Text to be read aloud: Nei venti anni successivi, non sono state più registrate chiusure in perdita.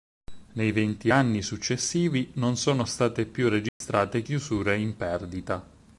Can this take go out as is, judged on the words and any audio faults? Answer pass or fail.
fail